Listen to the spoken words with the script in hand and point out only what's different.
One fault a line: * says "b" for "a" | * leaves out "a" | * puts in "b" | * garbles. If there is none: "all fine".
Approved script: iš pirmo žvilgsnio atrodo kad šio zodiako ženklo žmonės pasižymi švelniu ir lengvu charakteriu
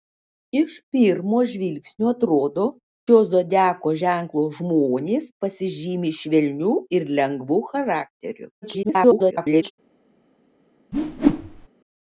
* leaves out "kad"
* garbles